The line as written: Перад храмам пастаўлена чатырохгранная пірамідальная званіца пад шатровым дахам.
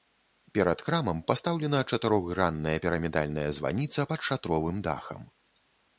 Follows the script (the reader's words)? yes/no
yes